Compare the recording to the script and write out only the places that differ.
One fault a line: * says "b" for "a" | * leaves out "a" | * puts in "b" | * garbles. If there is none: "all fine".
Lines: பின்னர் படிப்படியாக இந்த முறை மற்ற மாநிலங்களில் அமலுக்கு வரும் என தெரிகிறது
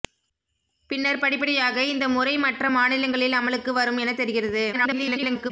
* garbles